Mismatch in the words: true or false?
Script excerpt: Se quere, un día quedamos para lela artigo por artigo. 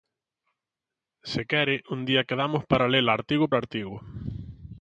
true